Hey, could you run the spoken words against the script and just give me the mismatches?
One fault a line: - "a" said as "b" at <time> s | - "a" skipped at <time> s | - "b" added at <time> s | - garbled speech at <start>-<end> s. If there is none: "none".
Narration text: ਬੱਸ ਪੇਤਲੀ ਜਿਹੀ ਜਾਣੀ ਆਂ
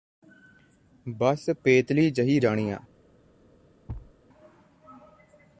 none